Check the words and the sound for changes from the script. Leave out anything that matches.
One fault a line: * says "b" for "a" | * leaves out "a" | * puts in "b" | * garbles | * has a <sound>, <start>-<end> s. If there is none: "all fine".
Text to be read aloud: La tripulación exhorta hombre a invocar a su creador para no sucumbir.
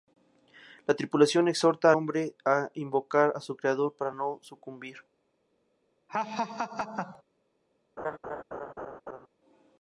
* has a laugh, 6.1-7.2 s
* has a laugh, 8.0-9.3 s